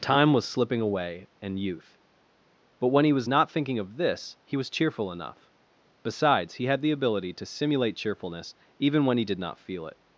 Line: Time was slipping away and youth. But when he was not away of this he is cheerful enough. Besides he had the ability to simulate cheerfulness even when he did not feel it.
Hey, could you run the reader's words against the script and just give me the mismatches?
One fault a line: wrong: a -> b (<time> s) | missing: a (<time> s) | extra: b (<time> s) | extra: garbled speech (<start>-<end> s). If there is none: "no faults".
wrong: away -> thinking (3.5 s)
wrong: is -> was (4.5 s)